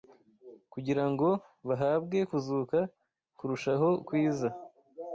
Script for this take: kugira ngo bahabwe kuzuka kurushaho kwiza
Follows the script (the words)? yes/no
yes